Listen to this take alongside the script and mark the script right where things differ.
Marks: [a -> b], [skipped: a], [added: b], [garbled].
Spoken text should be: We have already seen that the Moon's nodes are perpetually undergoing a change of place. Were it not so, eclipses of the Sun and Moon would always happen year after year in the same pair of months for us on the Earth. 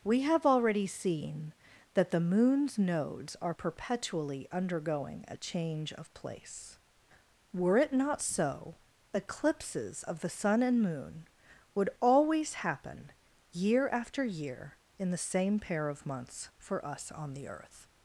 We have already seen that the Moon's nodes are perpetually undergoing a change of place. Were it not so, eclipses of the Sun and Moon would always happen year after year in the same pair of months for us on the Earth.